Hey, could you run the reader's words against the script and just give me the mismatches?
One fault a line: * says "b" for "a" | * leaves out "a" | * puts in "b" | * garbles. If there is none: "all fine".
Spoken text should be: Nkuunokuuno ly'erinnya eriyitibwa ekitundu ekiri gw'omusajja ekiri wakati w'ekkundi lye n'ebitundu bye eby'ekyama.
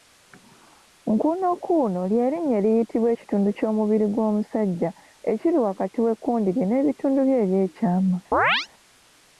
* says "ky'omubiri" for "ekiri"